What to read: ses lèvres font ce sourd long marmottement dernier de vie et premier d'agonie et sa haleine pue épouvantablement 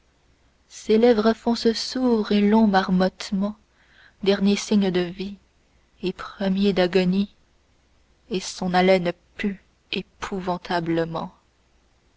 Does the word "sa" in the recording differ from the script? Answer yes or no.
yes